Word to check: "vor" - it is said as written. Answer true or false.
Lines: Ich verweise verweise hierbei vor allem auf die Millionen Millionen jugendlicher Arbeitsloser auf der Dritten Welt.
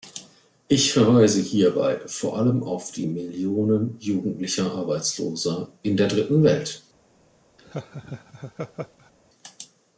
true